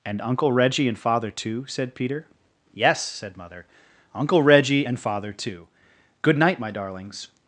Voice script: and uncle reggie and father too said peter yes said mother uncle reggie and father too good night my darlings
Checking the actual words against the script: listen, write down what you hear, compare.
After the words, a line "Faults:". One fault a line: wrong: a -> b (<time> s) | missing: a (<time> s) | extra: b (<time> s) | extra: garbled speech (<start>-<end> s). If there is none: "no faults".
and uncle reggie and father too said peter yes said mother uncle reggie and father too good night my darlings
Faults:
no faults